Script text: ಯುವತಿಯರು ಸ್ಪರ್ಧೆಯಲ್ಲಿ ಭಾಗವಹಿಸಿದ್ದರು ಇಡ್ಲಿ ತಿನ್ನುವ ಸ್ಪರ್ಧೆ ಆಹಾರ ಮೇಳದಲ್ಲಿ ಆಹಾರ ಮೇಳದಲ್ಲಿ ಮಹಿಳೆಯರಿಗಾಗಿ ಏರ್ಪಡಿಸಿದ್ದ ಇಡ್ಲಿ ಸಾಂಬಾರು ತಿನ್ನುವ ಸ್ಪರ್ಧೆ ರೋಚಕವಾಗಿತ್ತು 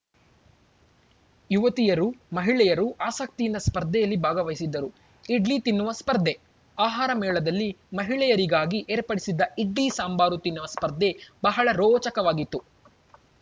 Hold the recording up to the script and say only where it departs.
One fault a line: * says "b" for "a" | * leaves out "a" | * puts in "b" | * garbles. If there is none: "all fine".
* puts in "ಮಹಿಳೆಯರು ಆಸಕ್ತಿಯಿಂದ"
* leaves out "ಆಹಾರ ಮೇಳದಲ್ಲಿ"
* puts in "ಬಹಳ"